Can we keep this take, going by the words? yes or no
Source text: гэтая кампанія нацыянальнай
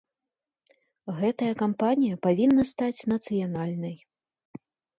no